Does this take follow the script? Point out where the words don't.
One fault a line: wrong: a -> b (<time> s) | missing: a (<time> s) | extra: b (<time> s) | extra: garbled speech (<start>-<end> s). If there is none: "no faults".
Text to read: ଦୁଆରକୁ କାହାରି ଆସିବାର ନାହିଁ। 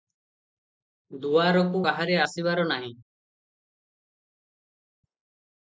no faults